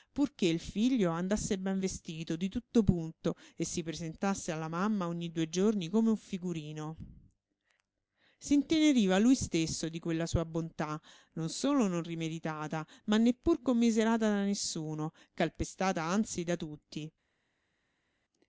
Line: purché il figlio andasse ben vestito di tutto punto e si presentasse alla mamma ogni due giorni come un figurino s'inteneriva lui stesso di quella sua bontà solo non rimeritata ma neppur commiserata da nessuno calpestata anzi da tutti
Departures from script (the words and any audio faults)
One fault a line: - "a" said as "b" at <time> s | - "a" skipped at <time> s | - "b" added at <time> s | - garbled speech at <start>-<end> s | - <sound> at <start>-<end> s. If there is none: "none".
- "non" added at 11.3 s